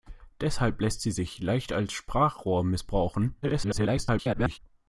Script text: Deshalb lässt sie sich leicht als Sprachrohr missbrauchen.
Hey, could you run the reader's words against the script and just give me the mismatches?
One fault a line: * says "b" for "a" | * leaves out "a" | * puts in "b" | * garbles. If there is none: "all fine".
* garbles